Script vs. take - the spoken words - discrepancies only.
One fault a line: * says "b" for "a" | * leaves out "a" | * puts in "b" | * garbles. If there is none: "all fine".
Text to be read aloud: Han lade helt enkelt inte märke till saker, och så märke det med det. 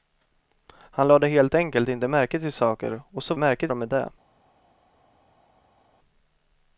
all fine